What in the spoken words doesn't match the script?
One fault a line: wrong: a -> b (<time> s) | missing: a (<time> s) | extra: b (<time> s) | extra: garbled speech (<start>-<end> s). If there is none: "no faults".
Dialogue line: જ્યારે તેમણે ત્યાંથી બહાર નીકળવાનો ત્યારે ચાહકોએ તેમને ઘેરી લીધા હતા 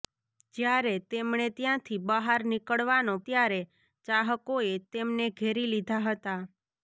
no faults